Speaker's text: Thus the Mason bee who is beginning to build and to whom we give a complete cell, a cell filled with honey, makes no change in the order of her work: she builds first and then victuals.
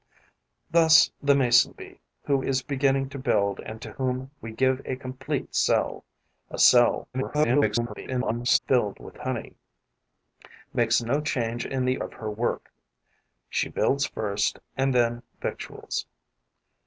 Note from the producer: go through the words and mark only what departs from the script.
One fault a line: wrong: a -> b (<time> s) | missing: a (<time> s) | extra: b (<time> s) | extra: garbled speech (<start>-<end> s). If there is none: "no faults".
extra: garbled speech (7.1-8.6 s)
missing: order (12.0 s)